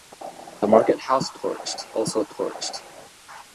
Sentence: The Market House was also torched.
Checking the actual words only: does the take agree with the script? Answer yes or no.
no